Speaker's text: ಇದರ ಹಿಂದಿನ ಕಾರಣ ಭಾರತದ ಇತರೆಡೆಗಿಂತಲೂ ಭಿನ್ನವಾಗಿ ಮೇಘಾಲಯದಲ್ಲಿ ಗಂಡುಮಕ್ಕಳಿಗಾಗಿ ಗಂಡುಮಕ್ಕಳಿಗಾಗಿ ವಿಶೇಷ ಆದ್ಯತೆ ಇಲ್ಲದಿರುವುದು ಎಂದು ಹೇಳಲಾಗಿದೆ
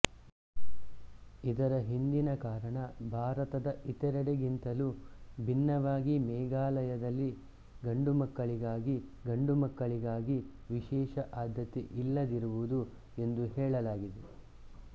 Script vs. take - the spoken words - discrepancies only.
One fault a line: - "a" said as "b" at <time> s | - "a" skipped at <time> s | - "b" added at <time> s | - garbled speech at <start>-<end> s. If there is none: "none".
none